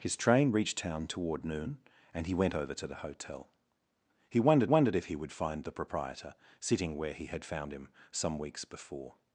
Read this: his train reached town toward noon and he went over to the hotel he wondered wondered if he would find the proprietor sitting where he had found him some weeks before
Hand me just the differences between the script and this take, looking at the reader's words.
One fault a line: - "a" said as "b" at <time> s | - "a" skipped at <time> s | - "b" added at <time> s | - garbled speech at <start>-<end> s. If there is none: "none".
none